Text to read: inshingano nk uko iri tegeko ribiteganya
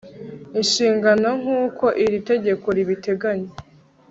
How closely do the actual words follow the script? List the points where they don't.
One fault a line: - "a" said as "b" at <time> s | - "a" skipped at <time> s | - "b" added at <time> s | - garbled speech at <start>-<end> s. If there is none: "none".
none